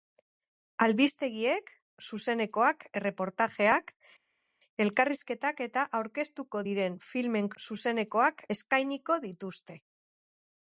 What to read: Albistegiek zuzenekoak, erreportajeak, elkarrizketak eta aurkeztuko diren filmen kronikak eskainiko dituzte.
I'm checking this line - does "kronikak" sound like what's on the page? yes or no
no